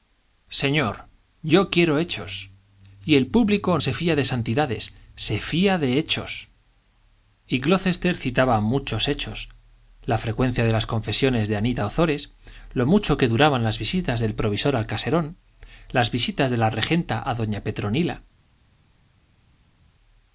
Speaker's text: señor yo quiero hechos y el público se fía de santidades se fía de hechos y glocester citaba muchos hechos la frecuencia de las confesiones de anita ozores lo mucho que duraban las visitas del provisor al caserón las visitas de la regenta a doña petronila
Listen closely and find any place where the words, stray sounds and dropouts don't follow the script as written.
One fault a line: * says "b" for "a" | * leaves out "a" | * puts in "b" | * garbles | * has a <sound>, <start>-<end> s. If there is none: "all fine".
all fine